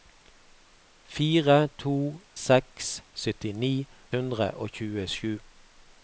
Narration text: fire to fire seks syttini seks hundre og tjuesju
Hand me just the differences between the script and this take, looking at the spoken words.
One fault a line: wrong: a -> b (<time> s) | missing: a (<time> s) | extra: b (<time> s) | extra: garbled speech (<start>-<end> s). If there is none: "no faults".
missing: fire (1.9 s)
missing: seks (3.7 s)